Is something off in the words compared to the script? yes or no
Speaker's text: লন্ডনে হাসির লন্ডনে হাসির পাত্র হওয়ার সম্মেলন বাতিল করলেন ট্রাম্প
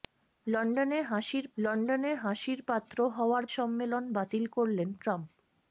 no